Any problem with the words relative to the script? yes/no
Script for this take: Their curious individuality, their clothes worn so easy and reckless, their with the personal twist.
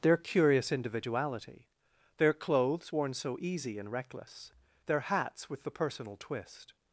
yes